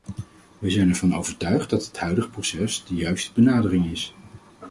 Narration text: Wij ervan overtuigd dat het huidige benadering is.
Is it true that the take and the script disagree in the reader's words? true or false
true